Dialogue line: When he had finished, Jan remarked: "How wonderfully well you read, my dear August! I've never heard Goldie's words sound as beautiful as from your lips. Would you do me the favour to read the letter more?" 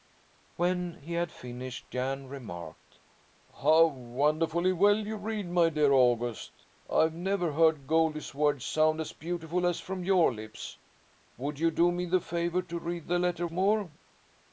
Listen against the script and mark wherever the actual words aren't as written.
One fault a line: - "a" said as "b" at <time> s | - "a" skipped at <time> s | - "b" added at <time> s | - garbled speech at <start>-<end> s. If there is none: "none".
none